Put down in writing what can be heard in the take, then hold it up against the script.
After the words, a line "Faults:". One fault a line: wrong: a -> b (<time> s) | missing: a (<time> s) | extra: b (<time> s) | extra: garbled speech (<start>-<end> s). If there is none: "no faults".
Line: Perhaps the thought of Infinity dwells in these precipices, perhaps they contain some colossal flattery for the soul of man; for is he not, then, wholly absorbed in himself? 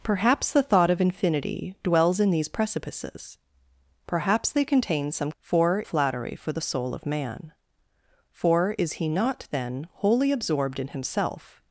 Perhaps the thought of Infinity dwells in these precipices, perhaps they contain some for flattery for the soul of man; for is he not, then, wholly absorbed in himself?
Faults:
wrong: colossal -> for (5.4 s)